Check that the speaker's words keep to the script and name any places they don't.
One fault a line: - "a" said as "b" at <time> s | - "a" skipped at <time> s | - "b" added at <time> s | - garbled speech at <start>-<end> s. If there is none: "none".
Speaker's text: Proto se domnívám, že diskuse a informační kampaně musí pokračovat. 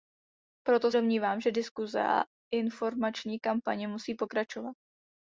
- "se" skipped at 0.9 s